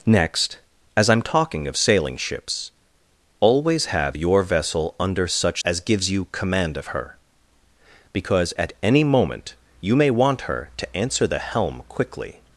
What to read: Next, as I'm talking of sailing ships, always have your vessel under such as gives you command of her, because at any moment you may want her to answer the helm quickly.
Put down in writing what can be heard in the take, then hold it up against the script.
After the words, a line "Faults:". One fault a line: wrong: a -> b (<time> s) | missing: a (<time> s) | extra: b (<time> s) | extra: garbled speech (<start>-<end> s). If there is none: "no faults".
Next, as I'm talking of sailing ships, always have your vessel under such as gives you command of her, because at any moment you may want her to answer the helm quickly.
Faults:
no faults